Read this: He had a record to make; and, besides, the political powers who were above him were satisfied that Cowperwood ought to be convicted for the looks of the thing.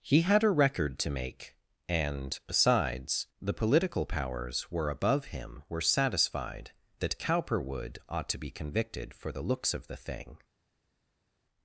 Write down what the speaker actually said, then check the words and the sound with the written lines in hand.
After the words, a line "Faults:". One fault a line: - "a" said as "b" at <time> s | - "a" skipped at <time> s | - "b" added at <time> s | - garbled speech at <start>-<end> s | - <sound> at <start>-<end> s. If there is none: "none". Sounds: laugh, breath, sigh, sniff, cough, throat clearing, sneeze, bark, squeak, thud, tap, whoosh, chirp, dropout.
He had a record to make; and, besides, the political powers were above him were satisfied that Cowperwood ought to be convicted for the looks of the thing.
Faults:
- "who" skipped at 4.7 s